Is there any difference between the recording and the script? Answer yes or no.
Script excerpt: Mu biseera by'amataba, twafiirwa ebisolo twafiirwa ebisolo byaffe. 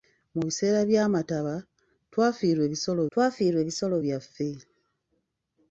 no